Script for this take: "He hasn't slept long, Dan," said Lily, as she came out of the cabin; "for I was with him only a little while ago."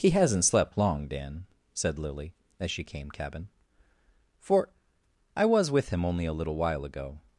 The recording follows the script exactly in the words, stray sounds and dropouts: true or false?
false